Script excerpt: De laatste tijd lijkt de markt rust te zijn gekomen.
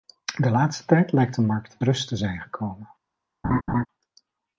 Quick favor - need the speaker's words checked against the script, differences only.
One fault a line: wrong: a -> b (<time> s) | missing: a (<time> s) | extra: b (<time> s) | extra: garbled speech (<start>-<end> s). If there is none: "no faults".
no faults